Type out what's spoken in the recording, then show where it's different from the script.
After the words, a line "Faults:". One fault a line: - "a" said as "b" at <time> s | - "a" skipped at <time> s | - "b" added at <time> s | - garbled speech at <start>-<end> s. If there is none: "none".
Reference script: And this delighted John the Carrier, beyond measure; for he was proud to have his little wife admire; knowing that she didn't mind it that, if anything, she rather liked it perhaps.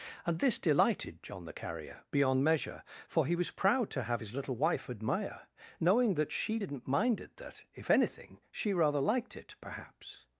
And this delighted John the Carrier, beyond measure; for he was proud to have his little wife admire; knowing that she didn't mind it that, if anything, she rather liked it perhaps.
Faults:
none